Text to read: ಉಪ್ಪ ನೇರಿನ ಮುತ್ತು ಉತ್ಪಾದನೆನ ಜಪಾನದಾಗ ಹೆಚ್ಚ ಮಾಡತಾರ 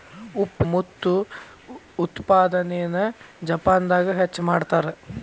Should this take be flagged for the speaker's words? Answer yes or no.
yes